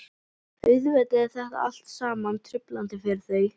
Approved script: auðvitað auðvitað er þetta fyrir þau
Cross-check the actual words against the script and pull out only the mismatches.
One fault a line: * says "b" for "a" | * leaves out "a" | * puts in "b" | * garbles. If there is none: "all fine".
* leaves out "auðvitað"
* puts in "allt saman truflandi"